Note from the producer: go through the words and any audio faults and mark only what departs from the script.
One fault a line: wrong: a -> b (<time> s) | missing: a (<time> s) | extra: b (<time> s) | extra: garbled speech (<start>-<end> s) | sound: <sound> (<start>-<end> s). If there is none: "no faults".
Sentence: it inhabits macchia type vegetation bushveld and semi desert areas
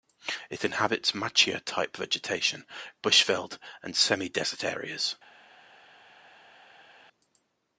no faults